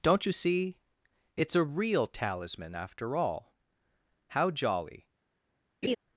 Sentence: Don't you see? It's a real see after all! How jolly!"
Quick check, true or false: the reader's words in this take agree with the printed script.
false